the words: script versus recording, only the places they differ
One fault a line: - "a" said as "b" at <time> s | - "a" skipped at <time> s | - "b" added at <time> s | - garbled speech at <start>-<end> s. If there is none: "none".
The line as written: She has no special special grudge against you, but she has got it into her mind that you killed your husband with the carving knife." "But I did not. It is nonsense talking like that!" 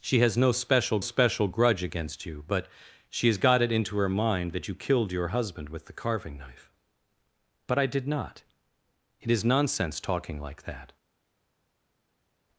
none